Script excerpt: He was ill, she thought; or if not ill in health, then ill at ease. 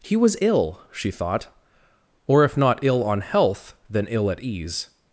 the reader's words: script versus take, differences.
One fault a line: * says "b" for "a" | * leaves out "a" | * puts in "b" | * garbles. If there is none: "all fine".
* says "on" for "in"